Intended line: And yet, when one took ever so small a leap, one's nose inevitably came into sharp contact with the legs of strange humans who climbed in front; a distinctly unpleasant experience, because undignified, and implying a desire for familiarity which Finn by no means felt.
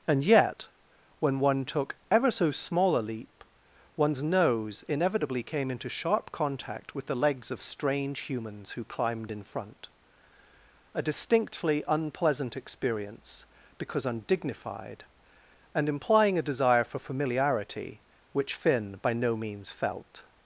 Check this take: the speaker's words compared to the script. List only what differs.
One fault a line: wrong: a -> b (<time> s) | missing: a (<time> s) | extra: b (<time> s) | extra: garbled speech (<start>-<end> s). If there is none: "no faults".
no faults